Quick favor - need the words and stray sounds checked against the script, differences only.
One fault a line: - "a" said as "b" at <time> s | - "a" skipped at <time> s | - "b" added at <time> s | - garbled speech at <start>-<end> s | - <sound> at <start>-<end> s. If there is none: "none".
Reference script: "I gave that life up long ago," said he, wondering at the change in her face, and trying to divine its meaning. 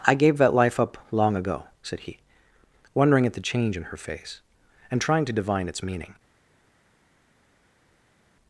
none